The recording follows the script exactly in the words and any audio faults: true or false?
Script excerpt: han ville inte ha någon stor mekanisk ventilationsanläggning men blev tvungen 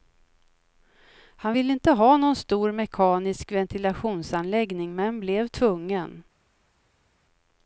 true